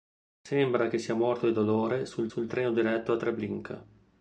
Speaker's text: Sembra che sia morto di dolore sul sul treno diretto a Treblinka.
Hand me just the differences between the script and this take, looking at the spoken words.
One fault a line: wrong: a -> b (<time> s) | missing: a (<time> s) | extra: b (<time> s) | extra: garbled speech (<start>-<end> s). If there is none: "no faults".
no faults